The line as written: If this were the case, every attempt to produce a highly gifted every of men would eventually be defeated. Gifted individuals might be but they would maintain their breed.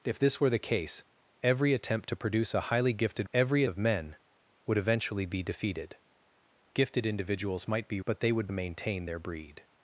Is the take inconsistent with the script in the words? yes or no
no